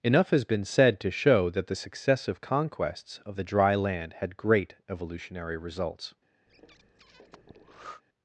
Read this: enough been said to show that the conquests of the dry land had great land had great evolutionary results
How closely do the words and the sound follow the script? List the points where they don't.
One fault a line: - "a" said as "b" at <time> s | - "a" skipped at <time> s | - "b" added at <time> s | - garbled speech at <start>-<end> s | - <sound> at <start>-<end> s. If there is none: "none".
- "has" added at 0.3 s
- "successive" added at 1.8 s
- "land had great" skipped at 4.7 s
- breath at 6.5-8.0 s